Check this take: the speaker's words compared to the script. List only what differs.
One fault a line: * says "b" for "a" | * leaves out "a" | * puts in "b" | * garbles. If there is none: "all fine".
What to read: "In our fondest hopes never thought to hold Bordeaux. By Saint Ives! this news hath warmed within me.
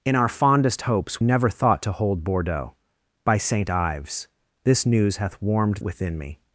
all fine